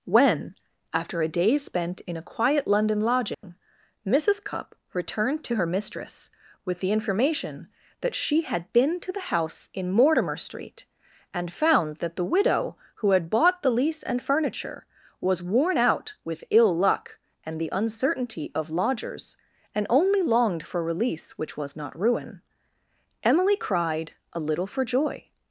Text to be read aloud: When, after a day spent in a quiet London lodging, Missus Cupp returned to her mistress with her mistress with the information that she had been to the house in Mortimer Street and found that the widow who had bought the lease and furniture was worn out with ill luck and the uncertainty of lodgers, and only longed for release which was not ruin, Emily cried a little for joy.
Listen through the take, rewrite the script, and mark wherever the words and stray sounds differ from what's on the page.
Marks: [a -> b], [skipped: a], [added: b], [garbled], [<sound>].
When, after a day spent in a quiet London lodging, [dropout] Missus Cupp returned to her mistress with [skipped: her mistress with] the information that she had been to the house in Mortimer Street and found that the widow who had bought the lease and furniture was worn out with ill luck and the uncertainty of lodgers, and only longed for release which was not ruin, Emily cried a little for joy.